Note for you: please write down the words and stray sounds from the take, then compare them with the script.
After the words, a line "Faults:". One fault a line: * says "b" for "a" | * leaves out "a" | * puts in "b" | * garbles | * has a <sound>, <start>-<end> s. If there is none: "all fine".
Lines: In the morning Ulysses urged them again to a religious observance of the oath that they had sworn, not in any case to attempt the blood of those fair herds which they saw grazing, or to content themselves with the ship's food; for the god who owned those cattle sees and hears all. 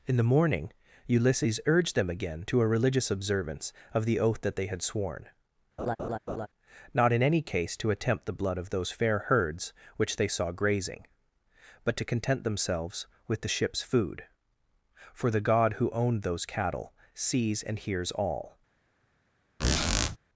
In the morning Ulysses urged them again to a religious observance of the oath that they had sworn, not in any case to attempt the blood of those fair herds which they saw grazing, but to content themselves with the ship's food; for the god who owned those cattle sees and hears all.
Faults:
* has a laugh, 5.8-6.5 s
* says "but" for "or"
* has a squeak, 19.6-20.2 s